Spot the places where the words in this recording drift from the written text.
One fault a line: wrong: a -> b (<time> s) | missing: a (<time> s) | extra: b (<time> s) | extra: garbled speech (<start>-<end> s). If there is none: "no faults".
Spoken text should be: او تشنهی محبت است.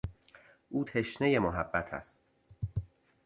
no faults